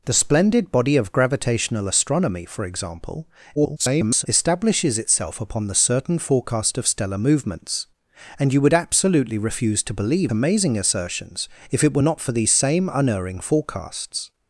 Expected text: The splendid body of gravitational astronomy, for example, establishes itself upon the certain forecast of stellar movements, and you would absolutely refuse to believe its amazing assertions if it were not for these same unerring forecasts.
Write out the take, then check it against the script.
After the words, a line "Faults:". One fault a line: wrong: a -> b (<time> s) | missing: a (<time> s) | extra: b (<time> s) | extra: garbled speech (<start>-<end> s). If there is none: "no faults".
The splendid body of gravitational astronomy, for example, [garbled] establishes itself upon the certain forecast of stellar movements, and you would absolutely refuse to believe amazing assertions if it were not for these same unerring forecasts.
Faults:
extra: garbled speech (3.5-4.3 s)
missing: its (10.3 s)